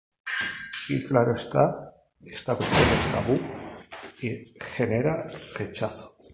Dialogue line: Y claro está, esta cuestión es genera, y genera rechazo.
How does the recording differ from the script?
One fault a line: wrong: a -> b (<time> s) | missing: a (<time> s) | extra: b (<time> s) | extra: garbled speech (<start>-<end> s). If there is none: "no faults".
wrong: genera -> tabú (3.1 s)